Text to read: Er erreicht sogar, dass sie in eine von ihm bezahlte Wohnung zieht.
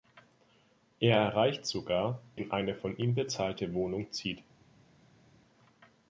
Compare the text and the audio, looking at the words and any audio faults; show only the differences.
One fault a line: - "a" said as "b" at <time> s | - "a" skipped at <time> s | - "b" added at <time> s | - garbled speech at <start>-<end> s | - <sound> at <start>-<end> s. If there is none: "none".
- "dass sie" skipped at 2.2 s